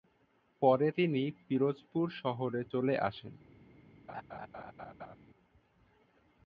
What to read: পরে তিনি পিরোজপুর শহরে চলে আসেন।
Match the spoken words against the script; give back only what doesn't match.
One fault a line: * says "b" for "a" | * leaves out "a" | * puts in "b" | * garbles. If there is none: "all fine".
all fine